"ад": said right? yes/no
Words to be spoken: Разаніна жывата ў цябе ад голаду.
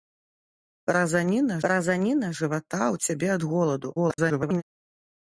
yes